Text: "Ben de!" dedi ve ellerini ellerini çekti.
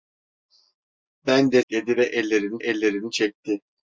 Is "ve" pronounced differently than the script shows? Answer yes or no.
no